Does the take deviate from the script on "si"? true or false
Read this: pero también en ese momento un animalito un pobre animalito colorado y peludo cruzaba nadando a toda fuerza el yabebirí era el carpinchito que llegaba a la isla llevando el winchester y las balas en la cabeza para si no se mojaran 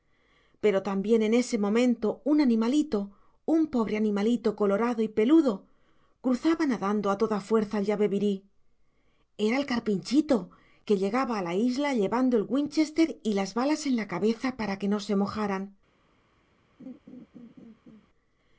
true